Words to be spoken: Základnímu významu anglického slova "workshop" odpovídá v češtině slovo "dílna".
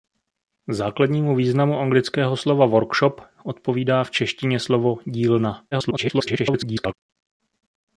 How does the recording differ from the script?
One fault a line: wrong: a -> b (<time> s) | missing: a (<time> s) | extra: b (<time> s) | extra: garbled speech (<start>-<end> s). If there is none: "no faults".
extra: garbled speech (5.7-6.9 s)